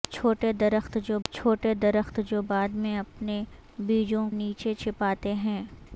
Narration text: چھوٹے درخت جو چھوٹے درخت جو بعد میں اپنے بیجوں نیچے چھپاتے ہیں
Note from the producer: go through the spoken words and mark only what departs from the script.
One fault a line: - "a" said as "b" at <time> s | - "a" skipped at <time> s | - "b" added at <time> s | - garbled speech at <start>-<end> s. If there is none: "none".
none